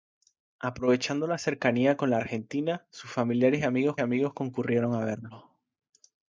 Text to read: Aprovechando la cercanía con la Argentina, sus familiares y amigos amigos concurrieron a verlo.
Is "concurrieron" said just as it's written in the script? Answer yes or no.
yes